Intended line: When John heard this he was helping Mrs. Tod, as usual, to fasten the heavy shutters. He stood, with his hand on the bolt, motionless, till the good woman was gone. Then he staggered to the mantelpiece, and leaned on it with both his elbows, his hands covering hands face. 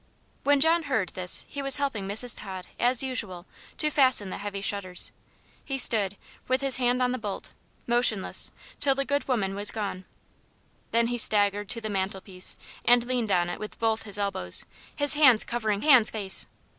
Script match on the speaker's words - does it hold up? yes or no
yes